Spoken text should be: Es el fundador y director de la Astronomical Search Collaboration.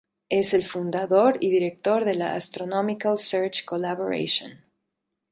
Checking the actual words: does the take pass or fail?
pass